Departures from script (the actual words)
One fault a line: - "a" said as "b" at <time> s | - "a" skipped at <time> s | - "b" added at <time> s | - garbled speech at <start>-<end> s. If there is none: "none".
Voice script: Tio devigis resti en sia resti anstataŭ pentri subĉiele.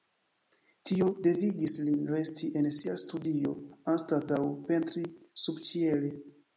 - "lin" added at 1.9 s
- "resti" said as "studio" at 3.0 s